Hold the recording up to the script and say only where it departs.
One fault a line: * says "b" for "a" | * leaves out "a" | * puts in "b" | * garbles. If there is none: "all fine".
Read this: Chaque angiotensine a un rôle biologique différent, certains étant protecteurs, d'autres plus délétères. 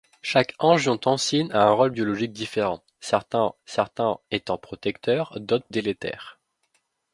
* puts in "certains"
* leaves out "plus"